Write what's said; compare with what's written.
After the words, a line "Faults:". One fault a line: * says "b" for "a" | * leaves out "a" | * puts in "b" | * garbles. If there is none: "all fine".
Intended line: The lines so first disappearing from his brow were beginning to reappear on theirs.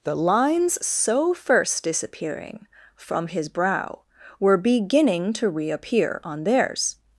The lines so first disappearing from his brow were beginning to reappear on theirs.
Faults:
all fine